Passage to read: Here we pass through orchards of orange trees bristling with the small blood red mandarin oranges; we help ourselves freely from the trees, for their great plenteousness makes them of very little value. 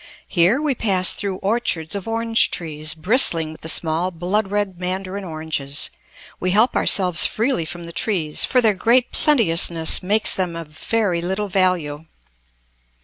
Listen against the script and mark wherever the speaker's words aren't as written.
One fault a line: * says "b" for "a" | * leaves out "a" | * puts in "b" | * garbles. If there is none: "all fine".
all fine